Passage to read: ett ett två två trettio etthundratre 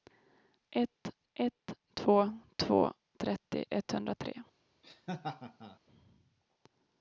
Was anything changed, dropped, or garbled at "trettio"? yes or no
no